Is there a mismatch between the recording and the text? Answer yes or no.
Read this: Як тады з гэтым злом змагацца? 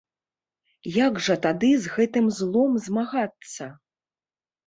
yes